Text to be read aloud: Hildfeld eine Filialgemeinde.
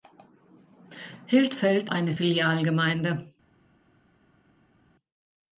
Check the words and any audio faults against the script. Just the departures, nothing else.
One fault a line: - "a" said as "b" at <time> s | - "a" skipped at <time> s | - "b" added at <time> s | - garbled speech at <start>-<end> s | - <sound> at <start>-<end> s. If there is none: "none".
none